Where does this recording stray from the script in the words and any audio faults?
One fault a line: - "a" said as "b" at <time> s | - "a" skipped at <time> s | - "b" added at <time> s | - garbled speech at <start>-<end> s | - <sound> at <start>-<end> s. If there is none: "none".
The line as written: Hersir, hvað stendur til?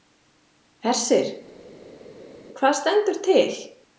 none